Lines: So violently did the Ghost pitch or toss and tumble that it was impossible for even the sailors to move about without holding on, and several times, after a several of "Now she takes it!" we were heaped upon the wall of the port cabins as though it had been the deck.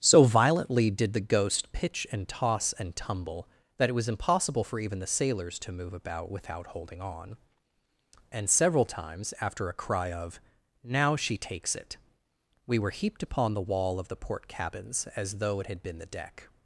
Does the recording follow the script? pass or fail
fail